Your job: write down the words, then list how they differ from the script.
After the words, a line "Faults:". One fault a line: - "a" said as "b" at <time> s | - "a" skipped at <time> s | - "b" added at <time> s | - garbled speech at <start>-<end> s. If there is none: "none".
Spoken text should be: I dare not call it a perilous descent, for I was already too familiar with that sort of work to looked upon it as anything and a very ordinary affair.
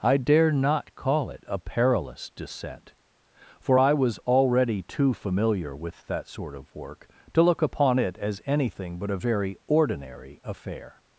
I dare not call it a perilous descent, for I was already too familiar with that sort of work to look upon it as anything but a very ordinary affair.
Faults:
- "looked" said as "look" at 7.4 s
- "and" said as "but" at 9.0 s